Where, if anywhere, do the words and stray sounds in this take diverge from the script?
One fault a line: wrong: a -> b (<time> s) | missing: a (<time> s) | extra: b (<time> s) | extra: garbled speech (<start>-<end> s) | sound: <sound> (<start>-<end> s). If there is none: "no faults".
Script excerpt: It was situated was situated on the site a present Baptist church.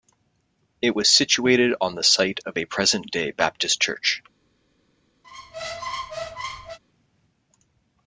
missing: was situated (1.7 s)
extra: of (2.4 s)
extra: day (3.1 s)
sound: squeak (5.2-6.8 s)